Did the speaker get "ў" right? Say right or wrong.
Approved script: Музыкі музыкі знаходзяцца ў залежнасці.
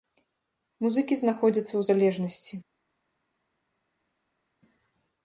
right